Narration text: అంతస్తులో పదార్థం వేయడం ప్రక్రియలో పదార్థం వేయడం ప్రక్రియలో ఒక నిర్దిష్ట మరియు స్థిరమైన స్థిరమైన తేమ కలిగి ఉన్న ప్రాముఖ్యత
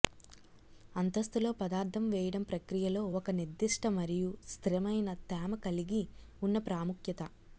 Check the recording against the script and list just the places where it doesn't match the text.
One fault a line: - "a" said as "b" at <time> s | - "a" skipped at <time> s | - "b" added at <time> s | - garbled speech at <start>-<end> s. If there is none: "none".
- "పదార్థం వేయడం ప్రక్రియలో" skipped at 3.0 s
- "స్థిరమైన" skipped at 5.1 s